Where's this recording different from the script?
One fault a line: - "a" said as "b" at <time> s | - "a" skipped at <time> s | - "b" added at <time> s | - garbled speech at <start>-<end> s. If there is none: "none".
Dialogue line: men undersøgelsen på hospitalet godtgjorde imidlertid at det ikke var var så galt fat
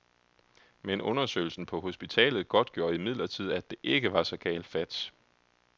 - "var" skipped at 4.2 s